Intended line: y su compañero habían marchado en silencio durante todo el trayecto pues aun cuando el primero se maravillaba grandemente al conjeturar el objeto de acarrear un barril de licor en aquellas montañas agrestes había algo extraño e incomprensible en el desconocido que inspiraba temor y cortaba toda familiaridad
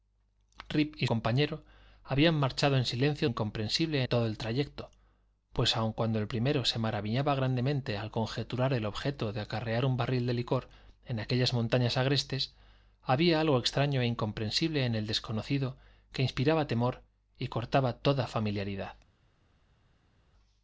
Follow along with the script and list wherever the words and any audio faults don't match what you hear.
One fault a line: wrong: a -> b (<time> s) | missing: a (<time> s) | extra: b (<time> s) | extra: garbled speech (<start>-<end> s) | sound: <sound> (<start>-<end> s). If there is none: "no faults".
missing: su (1.1 s)
wrong: durante -> incomprensible (3.2 s)